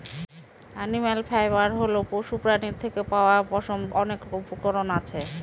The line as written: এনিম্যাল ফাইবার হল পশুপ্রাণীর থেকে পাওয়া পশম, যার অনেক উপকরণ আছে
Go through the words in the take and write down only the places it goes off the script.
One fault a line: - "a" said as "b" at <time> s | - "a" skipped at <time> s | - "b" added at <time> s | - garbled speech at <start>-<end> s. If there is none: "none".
- "যার" skipped at 3.8 s